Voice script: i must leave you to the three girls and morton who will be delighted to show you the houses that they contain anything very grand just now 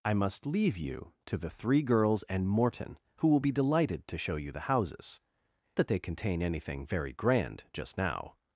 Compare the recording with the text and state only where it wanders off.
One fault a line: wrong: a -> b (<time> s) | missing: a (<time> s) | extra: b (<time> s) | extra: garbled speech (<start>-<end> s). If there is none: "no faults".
no faults